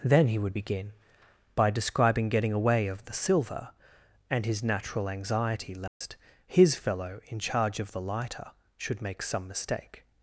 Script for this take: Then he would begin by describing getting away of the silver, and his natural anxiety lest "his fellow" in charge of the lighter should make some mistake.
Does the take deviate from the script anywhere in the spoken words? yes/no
no